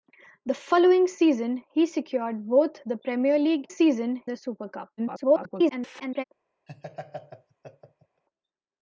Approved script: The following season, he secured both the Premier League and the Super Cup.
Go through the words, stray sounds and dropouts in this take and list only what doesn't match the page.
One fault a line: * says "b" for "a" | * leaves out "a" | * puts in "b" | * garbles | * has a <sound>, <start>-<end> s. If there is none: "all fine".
* says "season" for "and"
* garbles
* has a laugh, 6.7-8.2 s